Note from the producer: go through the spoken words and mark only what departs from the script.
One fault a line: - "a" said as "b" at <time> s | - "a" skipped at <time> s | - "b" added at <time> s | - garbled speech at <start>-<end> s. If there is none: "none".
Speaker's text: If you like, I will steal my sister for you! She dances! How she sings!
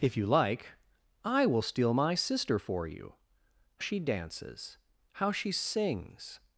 none